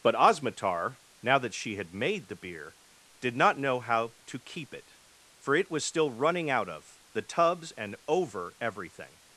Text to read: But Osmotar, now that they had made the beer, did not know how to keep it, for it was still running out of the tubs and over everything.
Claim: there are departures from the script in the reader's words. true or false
true